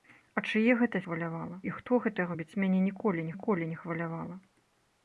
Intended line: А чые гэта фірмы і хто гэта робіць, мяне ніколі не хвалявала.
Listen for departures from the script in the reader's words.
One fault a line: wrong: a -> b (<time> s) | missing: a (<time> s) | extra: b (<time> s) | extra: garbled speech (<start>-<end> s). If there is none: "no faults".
wrong: фірмы -> хвалявала (1.0 s)
extra: ніколі (3.3 s)